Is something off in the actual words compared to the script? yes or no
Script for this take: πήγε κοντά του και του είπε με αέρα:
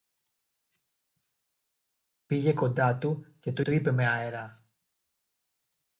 yes